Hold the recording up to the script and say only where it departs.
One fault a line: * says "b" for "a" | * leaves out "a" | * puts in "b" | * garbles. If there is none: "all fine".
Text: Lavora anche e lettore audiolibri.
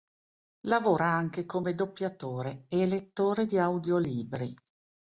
* puts in "come doppiatore"
* puts in "di"